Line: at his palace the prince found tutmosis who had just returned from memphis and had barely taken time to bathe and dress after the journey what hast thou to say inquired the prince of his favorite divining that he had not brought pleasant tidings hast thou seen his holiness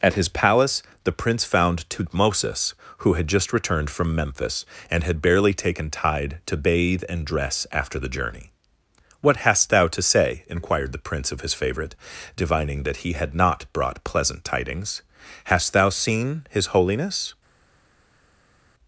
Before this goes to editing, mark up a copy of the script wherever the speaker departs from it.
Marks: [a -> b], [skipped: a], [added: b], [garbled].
at his palace the prince found tutmosis who had just returned from memphis and had barely taken [time -> tide] to bathe and dress after the journey what hast thou to say inquired the prince of his favorite divining that he had not brought pleasant tidings hast thou seen his holiness